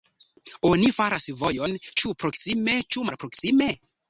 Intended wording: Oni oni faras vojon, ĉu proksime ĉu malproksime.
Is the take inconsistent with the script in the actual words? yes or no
yes